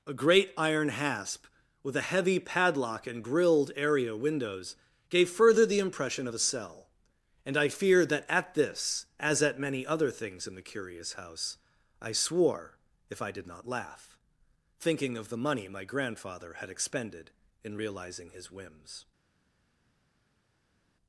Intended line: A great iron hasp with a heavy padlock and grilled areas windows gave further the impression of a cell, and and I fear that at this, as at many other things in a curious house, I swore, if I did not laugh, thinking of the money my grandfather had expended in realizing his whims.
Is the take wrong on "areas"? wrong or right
wrong